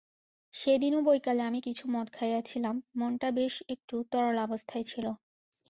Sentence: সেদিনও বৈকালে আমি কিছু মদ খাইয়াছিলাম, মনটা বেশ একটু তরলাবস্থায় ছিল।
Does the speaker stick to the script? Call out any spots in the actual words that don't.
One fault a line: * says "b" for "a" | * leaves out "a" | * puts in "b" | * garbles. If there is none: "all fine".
all fine